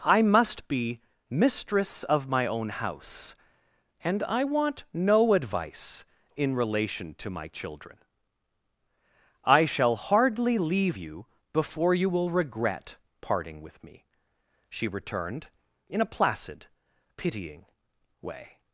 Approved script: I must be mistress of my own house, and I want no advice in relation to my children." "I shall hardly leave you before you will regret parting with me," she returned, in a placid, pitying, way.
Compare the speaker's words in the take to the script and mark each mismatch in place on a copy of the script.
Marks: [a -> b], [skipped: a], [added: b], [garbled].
I must be mistress of my own house, and I want no advice in relation to my children." "I shall hardly leave you before you will regret parting with me," she returned, in a placid, pitying, way.